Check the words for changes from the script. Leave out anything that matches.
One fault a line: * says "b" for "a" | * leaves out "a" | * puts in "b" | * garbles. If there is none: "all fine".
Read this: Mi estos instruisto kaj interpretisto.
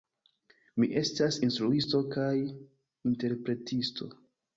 * says "estas" for "estos"